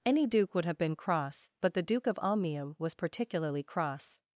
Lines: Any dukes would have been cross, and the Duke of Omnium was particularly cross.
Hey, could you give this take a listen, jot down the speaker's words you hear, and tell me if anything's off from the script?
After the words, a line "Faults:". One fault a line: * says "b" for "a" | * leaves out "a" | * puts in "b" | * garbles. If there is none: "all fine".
Any duke would have been cross, but the Duke of Omnium was particularly cross.
Faults:
* says "duke" for "dukes"
* says "but" for "and"